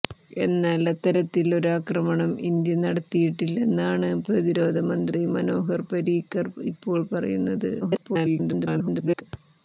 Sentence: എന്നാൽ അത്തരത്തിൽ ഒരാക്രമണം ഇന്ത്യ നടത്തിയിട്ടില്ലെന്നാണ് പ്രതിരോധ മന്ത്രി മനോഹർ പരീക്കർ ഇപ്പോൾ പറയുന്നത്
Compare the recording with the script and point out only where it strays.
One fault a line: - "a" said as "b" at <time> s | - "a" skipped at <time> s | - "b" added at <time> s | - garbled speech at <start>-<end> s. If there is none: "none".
- garbled speech at 7.8-9.2 s